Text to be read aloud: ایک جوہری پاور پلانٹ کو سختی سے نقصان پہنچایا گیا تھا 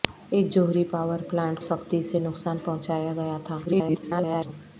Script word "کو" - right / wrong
wrong